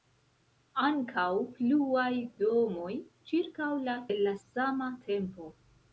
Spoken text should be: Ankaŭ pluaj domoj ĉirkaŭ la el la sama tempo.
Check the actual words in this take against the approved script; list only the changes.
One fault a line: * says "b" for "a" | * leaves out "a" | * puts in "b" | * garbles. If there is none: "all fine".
all fine